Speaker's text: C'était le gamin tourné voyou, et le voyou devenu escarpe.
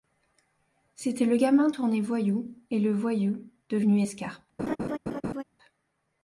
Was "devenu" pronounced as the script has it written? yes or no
yes